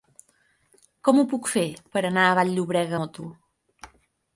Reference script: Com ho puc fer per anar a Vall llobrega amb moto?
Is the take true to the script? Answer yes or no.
no